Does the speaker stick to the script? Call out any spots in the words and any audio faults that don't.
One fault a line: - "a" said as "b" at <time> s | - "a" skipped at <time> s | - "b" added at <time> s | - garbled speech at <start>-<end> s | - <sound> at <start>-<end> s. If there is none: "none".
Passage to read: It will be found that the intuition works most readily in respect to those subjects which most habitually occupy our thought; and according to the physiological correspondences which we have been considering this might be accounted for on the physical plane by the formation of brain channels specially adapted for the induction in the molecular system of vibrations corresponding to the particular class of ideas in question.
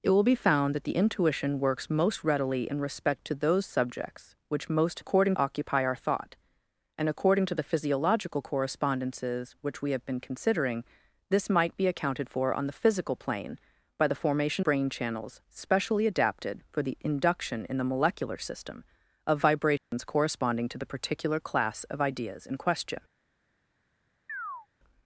- "habitually" said as "according" at 5.0 s
- "of" skipped at 14.6 s
- dropout at 19.8-19.9 s
- chirp at 24.3-24.7 s